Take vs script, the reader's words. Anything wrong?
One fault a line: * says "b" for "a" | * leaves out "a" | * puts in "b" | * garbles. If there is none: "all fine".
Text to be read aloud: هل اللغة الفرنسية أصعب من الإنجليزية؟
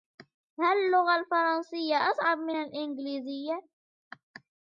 all fine